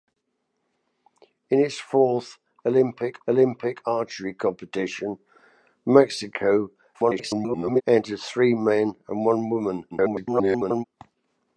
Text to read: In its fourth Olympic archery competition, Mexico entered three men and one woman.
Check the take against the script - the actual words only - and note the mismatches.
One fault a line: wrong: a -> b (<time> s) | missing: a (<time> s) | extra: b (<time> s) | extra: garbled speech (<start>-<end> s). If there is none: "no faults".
extra: Olympic (3.3 s)
extra: garbled speech (6.9-7.8 s)
extra: garbled speech (9.9-10.8 s)